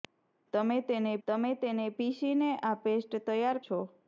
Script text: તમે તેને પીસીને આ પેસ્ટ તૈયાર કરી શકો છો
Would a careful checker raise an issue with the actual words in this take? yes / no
yes